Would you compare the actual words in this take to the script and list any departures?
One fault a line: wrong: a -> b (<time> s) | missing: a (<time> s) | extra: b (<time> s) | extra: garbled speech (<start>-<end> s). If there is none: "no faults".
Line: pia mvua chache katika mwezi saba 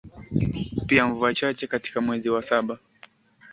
extra: wa (2.3 s)